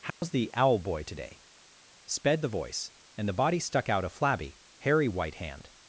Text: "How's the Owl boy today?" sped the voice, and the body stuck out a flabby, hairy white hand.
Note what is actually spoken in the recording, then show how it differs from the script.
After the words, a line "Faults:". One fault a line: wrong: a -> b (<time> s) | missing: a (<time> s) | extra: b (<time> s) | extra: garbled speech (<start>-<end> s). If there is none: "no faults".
"How's the Owl boy today?" sped the voice, and the body stuck out a flabby, hairy white hand.
Faults:
no faults